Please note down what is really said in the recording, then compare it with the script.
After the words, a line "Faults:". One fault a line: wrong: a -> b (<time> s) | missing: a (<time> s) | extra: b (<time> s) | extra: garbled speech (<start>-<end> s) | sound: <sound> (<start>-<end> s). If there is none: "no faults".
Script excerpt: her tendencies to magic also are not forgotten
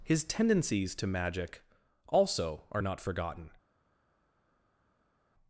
his tendencies to magic also are not forgotten
Faults:
wrong: her -> his (0.0 s)